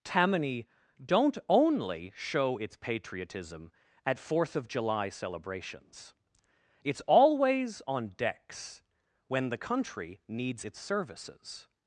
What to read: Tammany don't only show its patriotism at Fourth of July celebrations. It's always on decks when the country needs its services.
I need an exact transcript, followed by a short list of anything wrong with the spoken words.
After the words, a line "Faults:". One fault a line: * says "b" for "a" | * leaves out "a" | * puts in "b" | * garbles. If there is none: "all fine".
Tammany don't only show its patriotism at Fourth of July celebrations. It's always on decks when the country needs its services.
Faults:
all fine